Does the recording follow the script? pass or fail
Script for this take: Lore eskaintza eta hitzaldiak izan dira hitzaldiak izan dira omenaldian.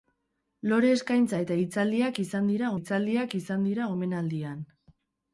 pass